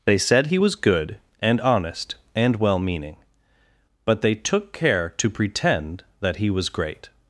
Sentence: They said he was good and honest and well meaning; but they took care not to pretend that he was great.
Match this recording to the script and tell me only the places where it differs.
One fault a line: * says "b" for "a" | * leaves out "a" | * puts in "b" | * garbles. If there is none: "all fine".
* leaves out "not"